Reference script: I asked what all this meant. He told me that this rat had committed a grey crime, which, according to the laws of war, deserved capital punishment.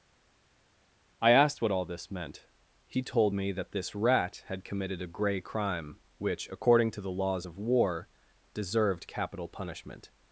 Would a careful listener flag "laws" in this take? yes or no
no